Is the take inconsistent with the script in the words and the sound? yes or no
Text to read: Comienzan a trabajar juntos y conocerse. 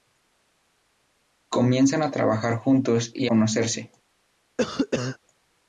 yes